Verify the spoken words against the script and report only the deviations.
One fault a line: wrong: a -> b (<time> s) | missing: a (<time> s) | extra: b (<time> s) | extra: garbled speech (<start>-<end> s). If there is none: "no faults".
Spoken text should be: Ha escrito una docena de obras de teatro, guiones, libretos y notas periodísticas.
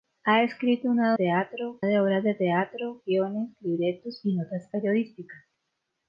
wrong: docena -> teatro (1.1 s)